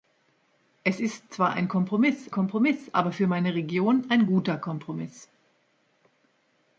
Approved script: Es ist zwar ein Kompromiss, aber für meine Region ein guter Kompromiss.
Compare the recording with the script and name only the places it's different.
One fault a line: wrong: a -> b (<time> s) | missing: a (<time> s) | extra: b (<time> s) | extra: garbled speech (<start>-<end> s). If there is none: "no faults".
extra: Kompromiss (2.3 s)